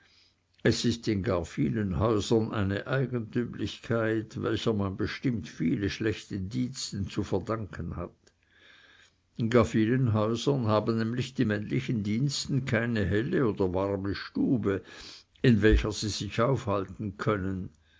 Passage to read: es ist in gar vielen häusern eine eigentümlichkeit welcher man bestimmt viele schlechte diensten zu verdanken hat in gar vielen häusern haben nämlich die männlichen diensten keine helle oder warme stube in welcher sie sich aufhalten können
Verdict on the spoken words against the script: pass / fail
pass